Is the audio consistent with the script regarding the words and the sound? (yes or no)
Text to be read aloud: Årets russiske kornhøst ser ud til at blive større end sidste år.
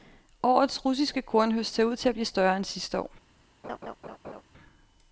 no